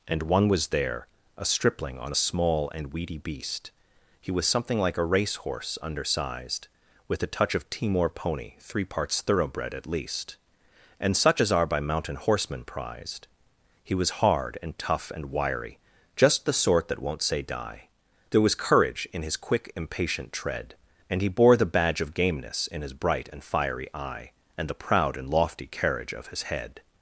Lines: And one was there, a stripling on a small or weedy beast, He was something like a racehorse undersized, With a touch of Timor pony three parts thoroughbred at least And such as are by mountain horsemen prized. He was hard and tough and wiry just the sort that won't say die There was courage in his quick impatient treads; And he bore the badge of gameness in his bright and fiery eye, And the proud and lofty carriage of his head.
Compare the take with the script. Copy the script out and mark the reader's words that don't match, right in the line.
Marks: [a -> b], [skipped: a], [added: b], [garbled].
And one was there, a stripling on a small [or -> and] weedy beast, He was something like a racehorse undersized, With a touch of Timor pony three parts thoroughbred at least And such as are by mountain horsemen prized. He was hard and tough and wiry just the sort that won't say die There was courage in his quick impatient [treads; -> tread] And he bore the badge of gameness in his bright and fiery eye, And the proud and lofty carriage of his head.